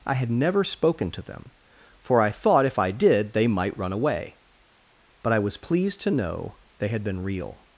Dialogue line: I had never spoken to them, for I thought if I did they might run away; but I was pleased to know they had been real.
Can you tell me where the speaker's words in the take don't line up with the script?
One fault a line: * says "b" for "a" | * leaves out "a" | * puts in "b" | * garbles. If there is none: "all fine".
all fine